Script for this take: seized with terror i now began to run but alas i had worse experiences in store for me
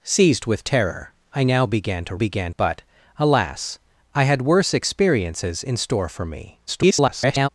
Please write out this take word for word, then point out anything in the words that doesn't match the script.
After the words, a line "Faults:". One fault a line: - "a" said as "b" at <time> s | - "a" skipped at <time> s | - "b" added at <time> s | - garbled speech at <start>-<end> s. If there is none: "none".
seized with terror i now began to began but alas i had worse experiences in store for me [garbled]
Faults:
- "run" said as "began" at 2.1 s
- garbled speech at 6.7-7.5 s